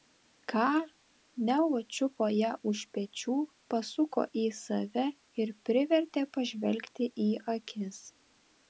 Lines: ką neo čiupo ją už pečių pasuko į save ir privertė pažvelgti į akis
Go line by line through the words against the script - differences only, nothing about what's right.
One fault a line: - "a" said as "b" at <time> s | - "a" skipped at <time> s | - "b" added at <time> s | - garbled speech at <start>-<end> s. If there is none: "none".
none